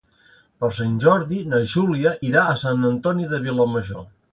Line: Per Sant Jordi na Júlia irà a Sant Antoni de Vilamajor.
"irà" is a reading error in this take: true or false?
false